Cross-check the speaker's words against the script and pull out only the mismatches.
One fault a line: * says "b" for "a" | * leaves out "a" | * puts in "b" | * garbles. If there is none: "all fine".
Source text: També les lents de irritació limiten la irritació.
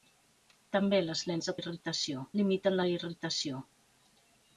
all fine